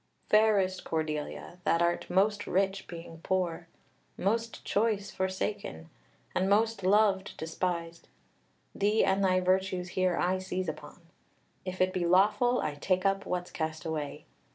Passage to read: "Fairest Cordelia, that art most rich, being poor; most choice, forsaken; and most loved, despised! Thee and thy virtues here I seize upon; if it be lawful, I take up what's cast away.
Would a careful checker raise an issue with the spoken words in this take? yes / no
no